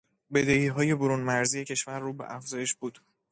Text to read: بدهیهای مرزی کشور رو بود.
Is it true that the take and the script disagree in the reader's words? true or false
true